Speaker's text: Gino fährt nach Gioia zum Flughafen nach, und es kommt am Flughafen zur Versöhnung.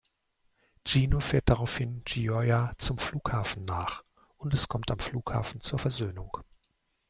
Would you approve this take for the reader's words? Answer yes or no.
no